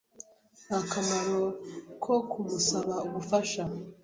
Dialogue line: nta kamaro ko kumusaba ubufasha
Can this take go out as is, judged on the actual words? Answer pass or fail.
pass